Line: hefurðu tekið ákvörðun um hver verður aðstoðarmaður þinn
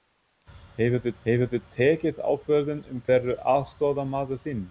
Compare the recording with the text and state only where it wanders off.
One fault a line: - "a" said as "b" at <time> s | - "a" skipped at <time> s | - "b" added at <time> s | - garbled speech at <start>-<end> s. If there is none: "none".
- "hefurðu" added at 1.2 s
- "hver" skipped at 3.0 s